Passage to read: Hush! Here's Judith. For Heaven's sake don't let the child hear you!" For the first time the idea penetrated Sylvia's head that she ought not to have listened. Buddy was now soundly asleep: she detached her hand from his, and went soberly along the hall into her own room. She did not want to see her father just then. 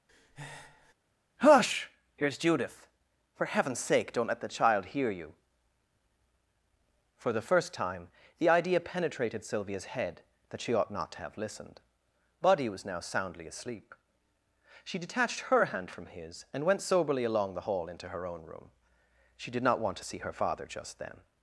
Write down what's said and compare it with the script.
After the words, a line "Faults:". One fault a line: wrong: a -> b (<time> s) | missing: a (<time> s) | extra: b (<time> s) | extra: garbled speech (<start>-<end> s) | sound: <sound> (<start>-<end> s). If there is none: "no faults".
Hush! Here's Judith. For Heaven's sake don't let the child hear you!" For the first time the idea penetrated Sylvia's head that she ought not to have listened. Buddy was now soundly asleep: she detached her hand from his, and went soberly along the hall into her own room. She did not want to see her father just then.
Faults:
sound: breath (0.1-0.9 s)